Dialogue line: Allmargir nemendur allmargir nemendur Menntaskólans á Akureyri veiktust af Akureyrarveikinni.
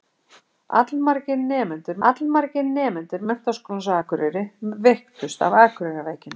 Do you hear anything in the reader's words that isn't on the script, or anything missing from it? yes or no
no